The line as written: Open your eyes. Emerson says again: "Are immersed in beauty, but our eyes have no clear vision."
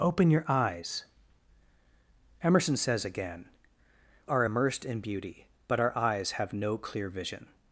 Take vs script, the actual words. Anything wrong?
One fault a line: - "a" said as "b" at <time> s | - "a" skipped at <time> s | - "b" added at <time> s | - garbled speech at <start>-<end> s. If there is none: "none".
none